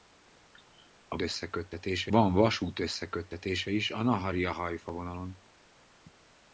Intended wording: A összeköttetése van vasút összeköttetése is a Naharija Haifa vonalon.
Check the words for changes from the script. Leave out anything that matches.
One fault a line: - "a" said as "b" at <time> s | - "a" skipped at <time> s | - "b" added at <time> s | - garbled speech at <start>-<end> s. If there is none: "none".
none